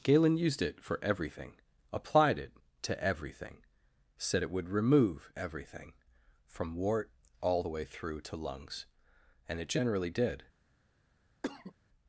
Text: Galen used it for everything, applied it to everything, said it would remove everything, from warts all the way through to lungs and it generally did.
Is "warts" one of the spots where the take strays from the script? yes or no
yes